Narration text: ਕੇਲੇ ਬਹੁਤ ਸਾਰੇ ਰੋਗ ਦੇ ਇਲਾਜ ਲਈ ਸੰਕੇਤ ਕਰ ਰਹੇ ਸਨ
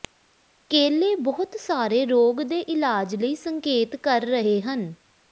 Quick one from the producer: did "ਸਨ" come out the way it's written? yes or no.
no